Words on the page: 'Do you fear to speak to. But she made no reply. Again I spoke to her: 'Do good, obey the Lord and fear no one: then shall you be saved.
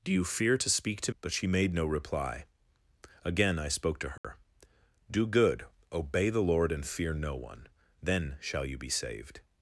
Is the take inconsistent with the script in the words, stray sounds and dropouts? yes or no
yes